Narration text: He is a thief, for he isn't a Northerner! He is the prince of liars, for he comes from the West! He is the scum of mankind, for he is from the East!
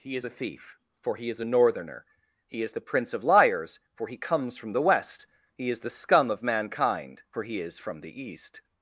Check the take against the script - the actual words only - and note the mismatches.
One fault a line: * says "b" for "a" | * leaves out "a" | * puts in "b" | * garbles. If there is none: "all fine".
* says "is" for "isn't"